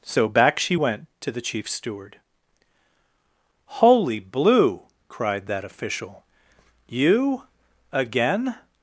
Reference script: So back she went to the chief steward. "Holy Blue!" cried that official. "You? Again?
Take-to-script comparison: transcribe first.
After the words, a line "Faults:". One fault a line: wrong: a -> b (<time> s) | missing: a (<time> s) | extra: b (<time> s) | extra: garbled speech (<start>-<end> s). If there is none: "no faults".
So back she went to the chief steward. "Holy Blue!" cried that official. "You? Again?
Faults:
no faults